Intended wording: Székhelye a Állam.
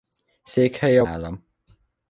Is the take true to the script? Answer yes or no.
yes